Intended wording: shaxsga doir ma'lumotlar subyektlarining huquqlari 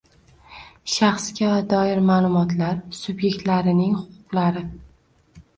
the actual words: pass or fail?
pass